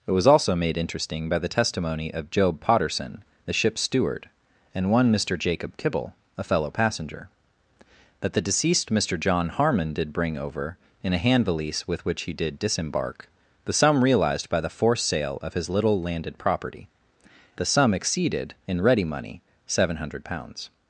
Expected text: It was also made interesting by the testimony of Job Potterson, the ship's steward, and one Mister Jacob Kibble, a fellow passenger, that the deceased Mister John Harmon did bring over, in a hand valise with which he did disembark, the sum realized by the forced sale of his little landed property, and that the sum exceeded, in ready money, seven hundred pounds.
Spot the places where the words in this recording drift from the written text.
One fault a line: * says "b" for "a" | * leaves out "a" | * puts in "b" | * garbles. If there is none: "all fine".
* leaves out "and that"